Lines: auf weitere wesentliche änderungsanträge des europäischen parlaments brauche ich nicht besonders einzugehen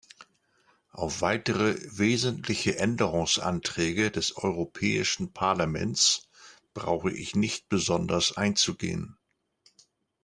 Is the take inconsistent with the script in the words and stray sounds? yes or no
no